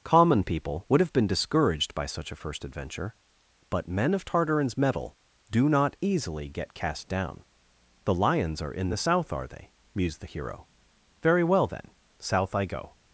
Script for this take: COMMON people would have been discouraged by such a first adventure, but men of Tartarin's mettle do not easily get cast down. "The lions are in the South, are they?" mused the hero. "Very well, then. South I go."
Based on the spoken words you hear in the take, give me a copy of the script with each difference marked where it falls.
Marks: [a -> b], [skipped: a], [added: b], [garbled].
COMMON people would have been discouraged by such a first adventure, but men of Tartarin's mettle do not easily get cast down. "The lions are in the South, are they?" mused the hero. "Very well, then. South I go."